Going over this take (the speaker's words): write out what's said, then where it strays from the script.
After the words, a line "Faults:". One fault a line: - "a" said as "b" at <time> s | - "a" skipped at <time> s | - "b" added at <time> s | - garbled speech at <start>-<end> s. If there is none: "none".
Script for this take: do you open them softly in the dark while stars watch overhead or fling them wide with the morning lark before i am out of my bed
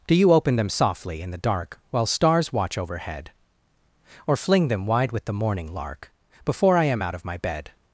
do you open them softly in the dark while stars watch overhead or fling them wide with the morning lark before i am out of my bed
Faults:
none